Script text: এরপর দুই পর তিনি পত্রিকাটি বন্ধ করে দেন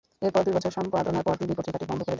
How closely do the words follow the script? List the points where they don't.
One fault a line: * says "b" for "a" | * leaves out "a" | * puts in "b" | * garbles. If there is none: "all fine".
* puts in "বছর সম্পাদনার"